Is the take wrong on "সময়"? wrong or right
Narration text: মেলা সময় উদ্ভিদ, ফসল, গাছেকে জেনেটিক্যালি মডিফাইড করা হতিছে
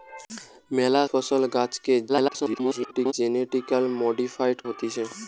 wrong